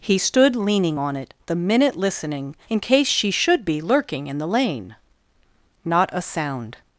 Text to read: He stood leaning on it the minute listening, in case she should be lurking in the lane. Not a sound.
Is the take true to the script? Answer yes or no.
yes